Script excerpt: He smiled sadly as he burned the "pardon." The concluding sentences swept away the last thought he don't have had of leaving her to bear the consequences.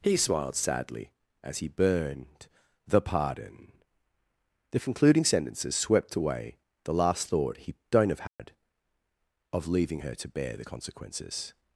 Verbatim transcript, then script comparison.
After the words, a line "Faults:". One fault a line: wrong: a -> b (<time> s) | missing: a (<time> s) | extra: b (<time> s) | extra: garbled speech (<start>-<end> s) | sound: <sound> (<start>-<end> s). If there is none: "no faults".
He smiled sadly as he burned the "pardon." The concluding sentences swept away the last thought he don't have had of leaving her to bear the consequences.
Faults:
sound: dropout (8.3-8.4 s)